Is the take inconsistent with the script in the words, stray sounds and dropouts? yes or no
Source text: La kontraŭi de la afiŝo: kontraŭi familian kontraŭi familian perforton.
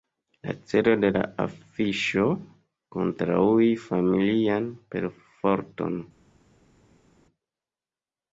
yes